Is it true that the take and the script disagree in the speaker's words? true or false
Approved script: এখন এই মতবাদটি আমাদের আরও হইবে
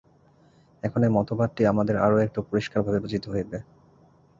true